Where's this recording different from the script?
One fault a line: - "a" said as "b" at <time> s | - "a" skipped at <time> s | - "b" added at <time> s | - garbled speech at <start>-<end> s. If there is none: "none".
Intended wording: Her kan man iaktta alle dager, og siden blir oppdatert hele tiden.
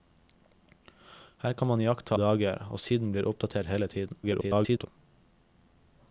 - "alle" skipped at 2.2 s
- garbled speech at 4.2-4.9 s